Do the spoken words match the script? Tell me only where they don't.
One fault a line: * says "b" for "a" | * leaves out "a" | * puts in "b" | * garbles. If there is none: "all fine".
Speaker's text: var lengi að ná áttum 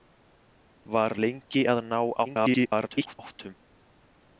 * garbles